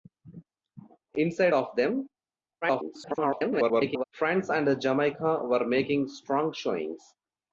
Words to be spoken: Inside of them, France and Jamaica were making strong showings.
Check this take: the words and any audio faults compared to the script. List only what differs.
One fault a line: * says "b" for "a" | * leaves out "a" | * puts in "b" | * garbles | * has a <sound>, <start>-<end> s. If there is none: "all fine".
* garbles